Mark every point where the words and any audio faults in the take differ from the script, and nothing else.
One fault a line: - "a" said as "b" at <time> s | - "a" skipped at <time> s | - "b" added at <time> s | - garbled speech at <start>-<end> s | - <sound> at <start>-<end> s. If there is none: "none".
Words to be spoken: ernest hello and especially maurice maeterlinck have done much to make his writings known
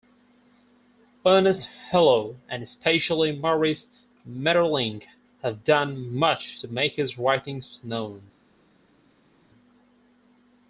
none